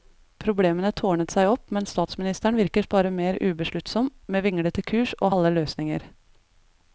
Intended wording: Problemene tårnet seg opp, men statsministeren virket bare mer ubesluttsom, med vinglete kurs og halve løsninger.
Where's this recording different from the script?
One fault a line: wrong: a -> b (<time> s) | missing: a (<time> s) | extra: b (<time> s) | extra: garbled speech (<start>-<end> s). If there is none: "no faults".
no faults